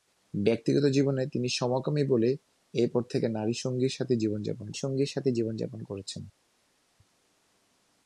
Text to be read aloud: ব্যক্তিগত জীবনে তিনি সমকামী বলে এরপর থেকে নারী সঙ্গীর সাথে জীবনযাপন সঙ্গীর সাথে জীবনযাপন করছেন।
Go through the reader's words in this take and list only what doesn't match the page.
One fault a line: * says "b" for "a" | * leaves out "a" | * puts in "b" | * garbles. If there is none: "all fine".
all fine